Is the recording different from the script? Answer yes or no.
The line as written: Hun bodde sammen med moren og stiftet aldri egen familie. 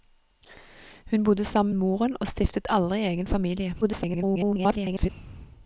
yes